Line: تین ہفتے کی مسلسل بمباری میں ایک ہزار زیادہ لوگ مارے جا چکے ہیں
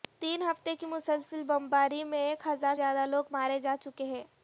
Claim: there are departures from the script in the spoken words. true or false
false